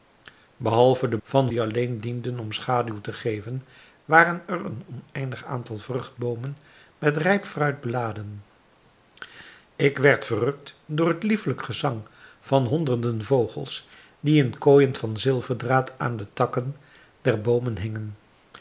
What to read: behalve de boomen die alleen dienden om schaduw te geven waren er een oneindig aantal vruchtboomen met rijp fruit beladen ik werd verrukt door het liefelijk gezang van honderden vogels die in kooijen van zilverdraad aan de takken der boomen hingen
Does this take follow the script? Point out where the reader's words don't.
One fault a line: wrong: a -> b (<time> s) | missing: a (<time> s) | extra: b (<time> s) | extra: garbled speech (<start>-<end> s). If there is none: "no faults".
wrong: boomen -> van (1.2 s)